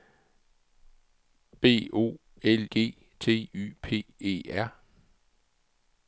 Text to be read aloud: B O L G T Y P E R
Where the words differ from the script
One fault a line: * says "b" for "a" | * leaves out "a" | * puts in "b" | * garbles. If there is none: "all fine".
all fine